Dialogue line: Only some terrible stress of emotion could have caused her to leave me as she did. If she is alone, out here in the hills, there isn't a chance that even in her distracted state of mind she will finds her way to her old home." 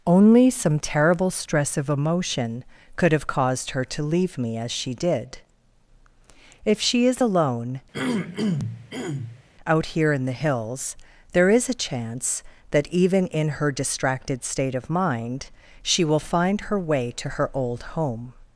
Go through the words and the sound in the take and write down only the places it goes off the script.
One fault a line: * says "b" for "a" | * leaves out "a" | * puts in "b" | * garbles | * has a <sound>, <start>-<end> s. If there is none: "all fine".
* has a throat clearing, 7.9-9.4 s
* says "is" for "isn't"
* says "find" for "finds"